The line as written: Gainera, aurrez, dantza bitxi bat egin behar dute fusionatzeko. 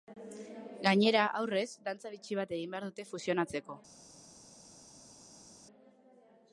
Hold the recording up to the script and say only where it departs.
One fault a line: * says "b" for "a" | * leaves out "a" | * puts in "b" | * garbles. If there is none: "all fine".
all fine